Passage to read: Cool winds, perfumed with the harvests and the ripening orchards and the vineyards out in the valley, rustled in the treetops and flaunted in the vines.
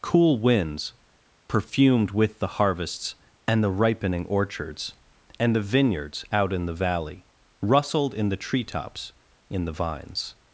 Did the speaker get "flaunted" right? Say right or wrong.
wrong